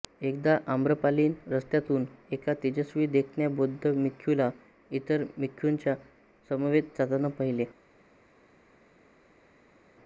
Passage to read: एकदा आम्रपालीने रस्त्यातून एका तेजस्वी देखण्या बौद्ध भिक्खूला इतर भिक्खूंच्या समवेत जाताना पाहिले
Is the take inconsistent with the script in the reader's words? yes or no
no